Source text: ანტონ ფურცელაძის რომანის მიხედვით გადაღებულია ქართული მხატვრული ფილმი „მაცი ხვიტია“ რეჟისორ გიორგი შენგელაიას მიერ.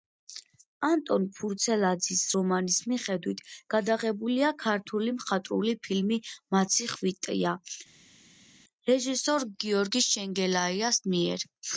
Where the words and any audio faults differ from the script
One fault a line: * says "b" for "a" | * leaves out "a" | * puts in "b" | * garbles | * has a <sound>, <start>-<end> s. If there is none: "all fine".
all fine